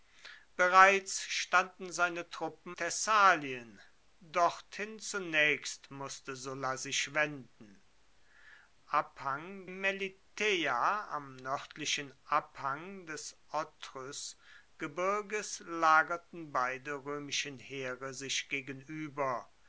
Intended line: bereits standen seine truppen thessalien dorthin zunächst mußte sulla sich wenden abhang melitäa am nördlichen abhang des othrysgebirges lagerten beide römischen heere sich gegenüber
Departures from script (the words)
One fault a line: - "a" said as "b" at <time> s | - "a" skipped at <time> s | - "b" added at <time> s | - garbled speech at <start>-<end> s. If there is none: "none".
none